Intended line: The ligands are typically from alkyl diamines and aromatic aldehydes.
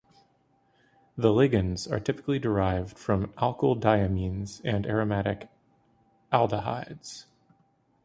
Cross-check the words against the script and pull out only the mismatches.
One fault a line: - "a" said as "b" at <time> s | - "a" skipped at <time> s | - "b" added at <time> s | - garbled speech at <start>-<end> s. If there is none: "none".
- "derived" added at 2.4 s